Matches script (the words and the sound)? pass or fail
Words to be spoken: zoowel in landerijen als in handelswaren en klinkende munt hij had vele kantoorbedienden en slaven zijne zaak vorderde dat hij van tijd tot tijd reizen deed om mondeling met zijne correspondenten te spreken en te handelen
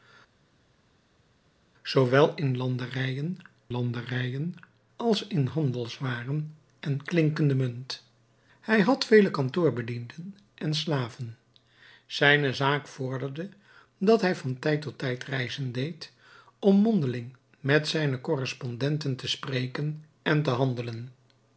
fail